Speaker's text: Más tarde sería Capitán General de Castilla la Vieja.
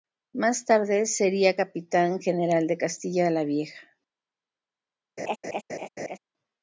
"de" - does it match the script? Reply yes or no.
yes